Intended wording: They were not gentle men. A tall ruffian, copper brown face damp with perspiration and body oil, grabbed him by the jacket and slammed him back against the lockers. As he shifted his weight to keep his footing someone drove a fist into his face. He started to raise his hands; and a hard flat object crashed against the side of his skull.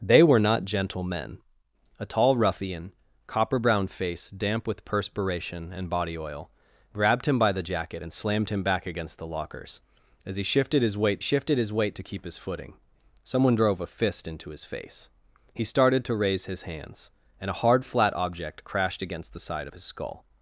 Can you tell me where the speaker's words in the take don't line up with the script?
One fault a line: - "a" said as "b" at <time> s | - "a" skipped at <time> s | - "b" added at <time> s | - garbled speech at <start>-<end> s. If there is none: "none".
- "shifted his weight" added at 11.2 s